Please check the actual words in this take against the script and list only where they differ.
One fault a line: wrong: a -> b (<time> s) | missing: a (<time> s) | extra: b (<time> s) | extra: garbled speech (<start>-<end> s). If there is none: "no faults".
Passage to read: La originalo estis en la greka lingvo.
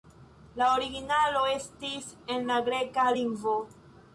no faults